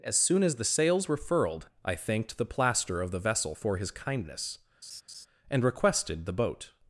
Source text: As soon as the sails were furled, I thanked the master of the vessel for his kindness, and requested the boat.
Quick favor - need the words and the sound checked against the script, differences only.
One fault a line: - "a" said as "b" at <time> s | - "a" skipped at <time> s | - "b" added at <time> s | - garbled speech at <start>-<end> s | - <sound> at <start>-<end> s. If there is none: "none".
- "master" said as "plaster" at 2.5 s
- laugh at 4.8-5.3 s